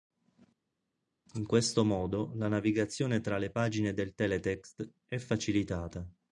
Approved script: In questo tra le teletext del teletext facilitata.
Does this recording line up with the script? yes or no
no